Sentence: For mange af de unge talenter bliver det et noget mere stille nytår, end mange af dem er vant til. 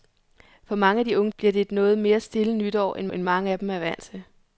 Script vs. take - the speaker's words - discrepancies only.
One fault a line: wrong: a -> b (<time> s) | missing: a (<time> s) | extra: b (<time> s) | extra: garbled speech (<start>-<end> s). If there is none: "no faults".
missing: talenter (1.3 s)
extra: end (3.1 s)